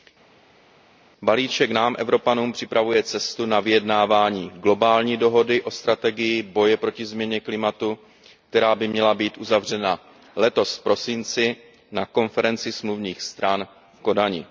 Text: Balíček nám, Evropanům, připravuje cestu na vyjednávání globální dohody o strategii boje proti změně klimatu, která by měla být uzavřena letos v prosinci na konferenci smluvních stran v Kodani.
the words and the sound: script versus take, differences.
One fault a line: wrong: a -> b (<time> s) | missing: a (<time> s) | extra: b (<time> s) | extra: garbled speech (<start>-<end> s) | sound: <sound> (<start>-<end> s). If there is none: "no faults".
no faults